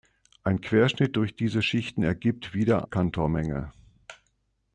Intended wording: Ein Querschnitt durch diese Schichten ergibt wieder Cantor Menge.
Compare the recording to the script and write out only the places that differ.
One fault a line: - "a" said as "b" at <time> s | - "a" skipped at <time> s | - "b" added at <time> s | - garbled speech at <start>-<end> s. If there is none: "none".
none